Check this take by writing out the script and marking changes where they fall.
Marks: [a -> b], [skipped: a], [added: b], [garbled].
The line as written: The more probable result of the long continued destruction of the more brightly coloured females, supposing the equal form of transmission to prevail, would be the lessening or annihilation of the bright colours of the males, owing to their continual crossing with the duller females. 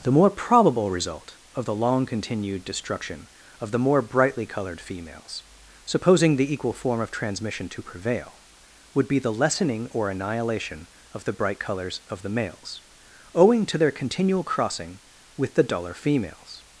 The more probable result of the long continued destruction of the more brightly coloured females, supposing the equal form of transmission to prevail, would be the lessening or annihilation of the bright colours of the males, owing to their continual crossing with the duller females.